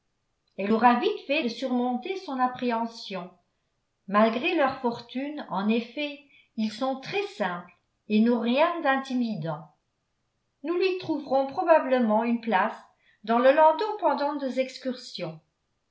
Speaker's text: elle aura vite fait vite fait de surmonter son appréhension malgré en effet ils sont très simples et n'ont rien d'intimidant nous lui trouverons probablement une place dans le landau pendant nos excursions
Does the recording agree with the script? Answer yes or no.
no